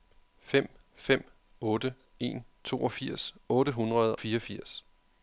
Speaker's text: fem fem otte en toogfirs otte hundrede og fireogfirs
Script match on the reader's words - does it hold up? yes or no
no